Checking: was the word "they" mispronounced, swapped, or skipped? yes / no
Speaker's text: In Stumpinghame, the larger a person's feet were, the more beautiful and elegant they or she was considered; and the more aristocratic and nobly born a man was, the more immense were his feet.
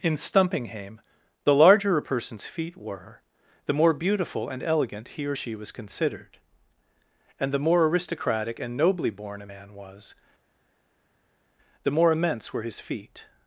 yes